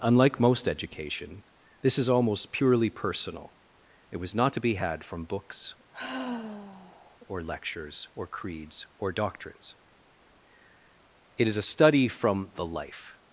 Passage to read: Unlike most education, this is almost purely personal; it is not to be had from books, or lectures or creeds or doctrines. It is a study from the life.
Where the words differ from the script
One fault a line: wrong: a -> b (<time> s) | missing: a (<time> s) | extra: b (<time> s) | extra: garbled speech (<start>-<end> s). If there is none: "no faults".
wrong: is -> was (4.2 s)